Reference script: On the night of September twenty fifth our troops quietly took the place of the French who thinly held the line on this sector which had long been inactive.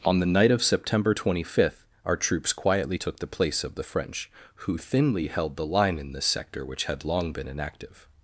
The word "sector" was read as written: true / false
true